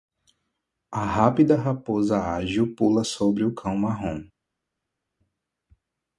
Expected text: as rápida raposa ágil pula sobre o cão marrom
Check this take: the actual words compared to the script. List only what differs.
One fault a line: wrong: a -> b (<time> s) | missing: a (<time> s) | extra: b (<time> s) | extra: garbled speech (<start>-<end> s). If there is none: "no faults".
wrong: as -> a (0.9 s)